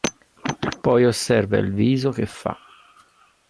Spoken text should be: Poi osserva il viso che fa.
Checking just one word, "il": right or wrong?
right